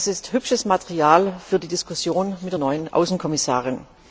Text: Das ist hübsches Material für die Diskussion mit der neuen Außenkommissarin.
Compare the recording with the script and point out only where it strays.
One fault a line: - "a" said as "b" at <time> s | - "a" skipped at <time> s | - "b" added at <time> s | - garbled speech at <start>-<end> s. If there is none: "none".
none